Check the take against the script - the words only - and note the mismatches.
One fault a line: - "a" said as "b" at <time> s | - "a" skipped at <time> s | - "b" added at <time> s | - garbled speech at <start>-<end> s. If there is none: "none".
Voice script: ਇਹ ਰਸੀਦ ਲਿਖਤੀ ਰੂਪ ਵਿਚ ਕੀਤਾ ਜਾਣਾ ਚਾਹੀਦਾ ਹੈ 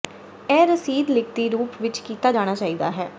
none